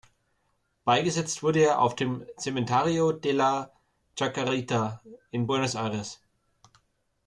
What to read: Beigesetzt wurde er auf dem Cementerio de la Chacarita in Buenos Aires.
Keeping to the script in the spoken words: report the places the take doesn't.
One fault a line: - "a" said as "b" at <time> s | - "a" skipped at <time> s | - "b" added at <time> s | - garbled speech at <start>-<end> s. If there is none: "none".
none